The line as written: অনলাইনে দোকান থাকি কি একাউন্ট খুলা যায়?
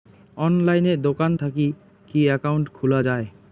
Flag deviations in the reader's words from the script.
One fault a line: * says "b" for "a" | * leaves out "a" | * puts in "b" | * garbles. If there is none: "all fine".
all fine